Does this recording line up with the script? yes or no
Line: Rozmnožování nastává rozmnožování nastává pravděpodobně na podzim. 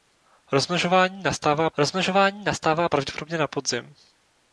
yes